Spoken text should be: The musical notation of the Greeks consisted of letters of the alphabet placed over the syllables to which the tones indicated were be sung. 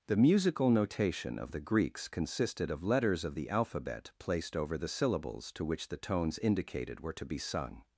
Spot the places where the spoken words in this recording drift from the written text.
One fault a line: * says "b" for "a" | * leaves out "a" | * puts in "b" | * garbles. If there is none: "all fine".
* puts in "to"